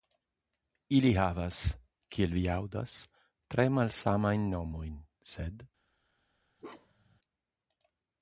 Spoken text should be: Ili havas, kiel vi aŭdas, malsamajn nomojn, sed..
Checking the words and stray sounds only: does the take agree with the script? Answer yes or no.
no